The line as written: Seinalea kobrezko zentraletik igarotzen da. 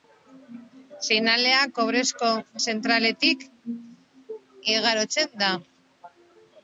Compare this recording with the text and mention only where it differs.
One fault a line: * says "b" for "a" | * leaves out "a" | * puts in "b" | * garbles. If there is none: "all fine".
all fine